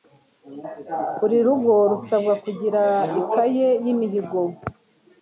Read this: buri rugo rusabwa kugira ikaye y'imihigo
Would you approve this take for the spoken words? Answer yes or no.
yes